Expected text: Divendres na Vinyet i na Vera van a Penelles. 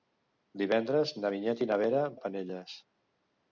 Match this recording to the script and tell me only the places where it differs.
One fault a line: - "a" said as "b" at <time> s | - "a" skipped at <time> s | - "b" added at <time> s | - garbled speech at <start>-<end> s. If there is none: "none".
- "van" skipped at 2.0 s